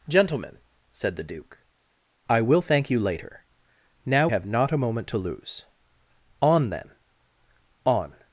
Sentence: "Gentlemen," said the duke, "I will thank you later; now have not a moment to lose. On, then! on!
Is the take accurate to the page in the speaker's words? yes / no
yes